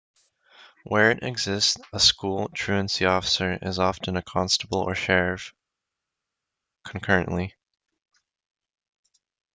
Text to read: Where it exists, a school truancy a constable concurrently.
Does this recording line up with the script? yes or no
no